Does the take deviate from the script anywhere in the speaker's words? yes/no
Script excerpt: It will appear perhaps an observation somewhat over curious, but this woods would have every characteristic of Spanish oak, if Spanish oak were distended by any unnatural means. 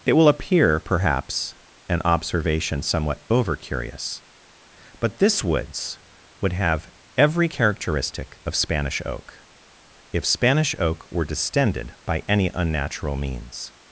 no